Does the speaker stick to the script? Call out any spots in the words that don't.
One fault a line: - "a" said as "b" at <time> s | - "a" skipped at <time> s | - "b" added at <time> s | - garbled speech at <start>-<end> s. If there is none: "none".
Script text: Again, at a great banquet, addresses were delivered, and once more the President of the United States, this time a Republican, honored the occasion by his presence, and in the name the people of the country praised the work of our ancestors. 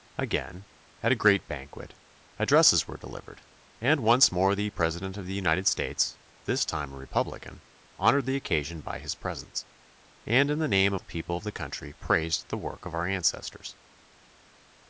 none